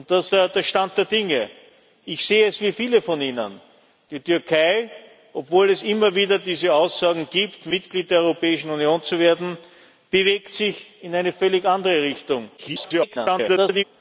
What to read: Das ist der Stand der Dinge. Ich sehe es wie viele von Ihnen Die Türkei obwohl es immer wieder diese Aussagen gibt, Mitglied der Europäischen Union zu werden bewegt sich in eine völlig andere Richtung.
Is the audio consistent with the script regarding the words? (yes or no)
no